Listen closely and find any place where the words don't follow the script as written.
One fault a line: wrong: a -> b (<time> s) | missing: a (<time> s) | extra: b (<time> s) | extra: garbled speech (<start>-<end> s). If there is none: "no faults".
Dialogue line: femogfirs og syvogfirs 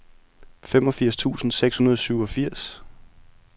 extra: tusind seks hundrede (1.1 s)